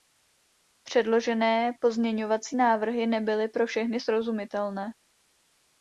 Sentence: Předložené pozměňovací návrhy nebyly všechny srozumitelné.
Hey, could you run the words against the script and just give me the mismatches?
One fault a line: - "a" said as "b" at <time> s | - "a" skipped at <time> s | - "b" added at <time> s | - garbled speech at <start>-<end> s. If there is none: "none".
- "pro" added at 3.5 s